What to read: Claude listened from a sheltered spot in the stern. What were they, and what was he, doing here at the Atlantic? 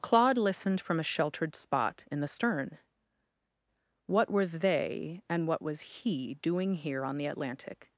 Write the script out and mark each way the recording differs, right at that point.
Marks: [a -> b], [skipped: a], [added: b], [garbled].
Claude listened from a sheltered spot in the stern. What were they, and what was he, doing here [at -> on] the Atlantic?